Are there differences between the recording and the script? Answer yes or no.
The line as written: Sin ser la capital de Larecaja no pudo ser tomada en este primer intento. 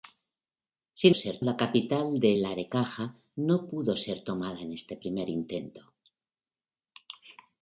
no